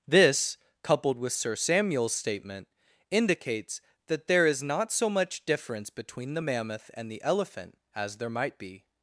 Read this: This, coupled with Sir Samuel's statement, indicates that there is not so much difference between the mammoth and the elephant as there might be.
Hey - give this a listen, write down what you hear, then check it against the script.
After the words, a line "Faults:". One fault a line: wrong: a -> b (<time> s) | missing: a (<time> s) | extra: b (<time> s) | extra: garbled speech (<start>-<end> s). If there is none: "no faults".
This, coupled with Sir Samuel's statement, indicates that there is not so much difference between the mammoth and the elephant as there might be.
Faults:
no faults